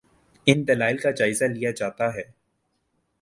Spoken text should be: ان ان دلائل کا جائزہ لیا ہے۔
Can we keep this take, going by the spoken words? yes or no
no